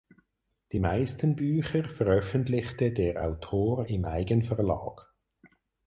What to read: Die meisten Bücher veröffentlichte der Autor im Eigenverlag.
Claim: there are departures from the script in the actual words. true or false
false